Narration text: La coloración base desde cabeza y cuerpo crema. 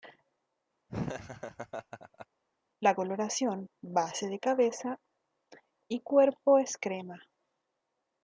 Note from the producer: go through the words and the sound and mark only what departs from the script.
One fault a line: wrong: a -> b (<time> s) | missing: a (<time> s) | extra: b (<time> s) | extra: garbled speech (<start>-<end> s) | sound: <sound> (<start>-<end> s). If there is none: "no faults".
sound: laugh (0.9-2.3 s)
wrong: desde -> de (4.3 s)
extra: es (6.6 s)